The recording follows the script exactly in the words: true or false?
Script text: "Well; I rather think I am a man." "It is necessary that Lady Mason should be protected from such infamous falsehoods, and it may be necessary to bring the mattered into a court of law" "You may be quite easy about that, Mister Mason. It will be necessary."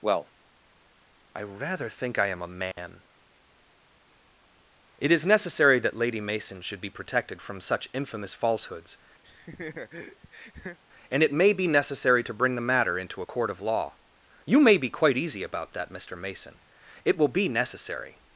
false